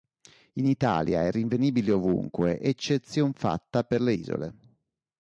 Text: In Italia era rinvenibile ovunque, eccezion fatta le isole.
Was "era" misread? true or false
true